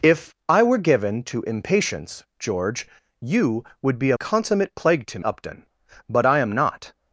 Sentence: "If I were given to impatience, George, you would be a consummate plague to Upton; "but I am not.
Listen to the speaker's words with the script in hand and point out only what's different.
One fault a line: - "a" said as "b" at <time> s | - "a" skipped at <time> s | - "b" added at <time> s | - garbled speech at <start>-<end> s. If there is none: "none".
none